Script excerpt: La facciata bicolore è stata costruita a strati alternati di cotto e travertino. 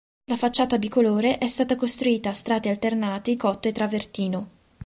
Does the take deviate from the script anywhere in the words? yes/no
yes